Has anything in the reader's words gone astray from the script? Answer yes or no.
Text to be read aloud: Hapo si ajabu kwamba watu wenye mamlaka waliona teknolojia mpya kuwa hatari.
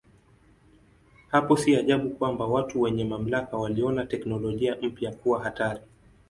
no